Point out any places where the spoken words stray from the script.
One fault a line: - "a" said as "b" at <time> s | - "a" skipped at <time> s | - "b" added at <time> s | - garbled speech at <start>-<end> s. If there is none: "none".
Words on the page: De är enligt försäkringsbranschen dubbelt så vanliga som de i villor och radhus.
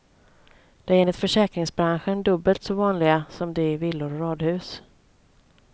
none